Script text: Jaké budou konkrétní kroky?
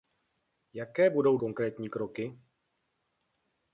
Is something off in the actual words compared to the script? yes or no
no